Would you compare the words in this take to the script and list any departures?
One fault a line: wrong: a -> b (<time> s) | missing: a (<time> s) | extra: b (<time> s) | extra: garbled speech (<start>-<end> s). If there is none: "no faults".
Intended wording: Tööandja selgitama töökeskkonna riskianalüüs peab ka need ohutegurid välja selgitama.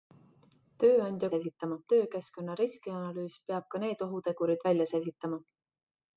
no faults